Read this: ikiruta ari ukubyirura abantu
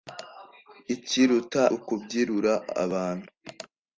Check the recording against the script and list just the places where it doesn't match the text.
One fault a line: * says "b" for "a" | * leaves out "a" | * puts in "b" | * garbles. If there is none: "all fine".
* leaves out "ari"